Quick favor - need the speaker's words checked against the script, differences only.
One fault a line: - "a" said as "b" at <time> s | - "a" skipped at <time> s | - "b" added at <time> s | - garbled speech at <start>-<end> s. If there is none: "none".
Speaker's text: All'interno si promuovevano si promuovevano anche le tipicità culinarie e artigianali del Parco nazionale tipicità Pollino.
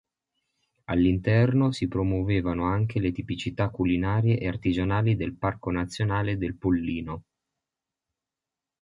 - "si promuovevano" skipped at 2.7 s
- "tipicità" said as "del" at 6.4 s